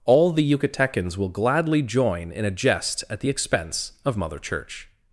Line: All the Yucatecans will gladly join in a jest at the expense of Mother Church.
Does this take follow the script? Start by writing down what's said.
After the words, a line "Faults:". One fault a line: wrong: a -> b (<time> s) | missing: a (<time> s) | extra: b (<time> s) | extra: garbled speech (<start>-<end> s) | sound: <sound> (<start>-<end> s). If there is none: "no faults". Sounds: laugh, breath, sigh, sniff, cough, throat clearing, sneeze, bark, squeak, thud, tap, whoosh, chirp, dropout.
All the Yucatecans will gladly join in a jest at the expense of Mother Church.
Faults:
no faults